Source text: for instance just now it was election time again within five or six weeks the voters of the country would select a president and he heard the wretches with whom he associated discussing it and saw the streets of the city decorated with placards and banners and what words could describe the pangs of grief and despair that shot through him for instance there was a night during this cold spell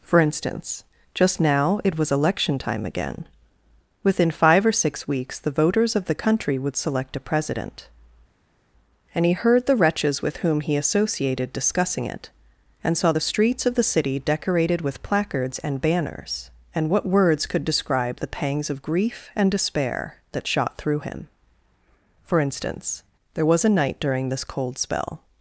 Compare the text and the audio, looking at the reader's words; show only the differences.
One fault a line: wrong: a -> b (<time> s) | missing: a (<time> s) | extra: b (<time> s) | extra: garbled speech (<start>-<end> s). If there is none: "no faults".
no faults